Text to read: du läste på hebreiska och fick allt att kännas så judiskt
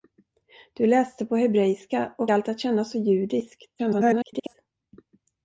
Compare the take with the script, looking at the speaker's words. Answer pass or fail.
fail